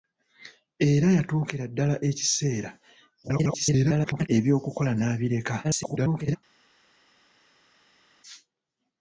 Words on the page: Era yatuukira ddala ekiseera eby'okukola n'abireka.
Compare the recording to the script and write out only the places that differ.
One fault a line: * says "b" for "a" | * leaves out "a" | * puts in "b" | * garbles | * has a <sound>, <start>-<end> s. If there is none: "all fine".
* garbles
* garbles